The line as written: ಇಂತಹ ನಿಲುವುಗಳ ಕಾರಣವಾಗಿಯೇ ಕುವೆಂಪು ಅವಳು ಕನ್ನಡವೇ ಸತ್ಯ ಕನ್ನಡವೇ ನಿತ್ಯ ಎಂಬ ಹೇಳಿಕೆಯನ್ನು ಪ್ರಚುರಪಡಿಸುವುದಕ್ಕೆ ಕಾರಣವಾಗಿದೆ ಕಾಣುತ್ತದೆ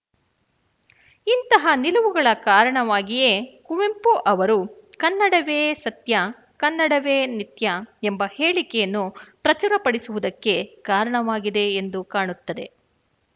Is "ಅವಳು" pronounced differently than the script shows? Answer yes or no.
yes